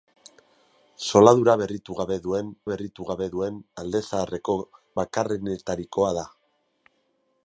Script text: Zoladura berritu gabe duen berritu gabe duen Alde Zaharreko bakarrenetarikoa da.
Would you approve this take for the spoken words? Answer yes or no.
yes